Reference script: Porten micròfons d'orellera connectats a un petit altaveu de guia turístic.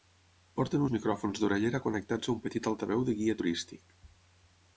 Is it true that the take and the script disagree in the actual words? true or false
false